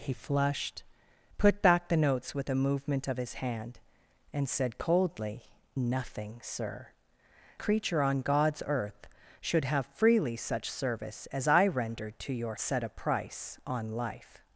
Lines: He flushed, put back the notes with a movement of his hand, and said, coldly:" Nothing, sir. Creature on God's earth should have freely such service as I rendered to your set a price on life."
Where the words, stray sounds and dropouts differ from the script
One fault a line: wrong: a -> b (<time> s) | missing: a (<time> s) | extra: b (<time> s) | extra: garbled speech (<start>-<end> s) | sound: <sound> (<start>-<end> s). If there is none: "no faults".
no faults